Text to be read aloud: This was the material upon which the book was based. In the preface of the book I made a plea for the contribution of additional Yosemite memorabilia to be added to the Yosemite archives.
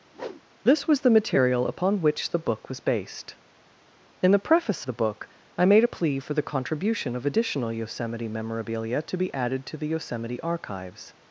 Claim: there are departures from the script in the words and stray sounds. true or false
true